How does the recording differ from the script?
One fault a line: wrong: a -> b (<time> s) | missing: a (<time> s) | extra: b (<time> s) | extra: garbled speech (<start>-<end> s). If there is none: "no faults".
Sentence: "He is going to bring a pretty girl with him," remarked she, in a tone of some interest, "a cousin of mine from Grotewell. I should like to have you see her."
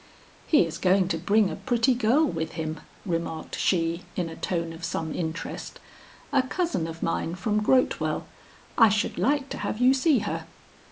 no faults